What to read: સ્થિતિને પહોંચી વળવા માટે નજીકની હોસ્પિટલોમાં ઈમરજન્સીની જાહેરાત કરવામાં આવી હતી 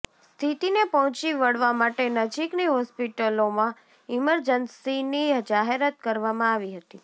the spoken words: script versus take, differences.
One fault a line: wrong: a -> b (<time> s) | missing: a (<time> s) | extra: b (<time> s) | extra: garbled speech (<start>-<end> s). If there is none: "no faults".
no faults